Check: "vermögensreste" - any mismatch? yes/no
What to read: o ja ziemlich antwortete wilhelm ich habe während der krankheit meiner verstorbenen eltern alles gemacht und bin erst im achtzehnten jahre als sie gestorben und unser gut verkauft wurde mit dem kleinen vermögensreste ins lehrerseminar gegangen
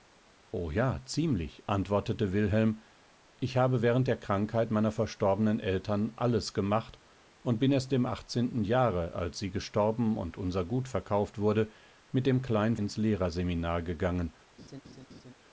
yes